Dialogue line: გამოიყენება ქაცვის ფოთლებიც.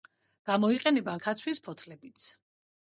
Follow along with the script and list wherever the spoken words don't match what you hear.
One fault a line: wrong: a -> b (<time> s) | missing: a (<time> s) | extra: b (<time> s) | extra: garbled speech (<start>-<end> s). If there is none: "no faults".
no faults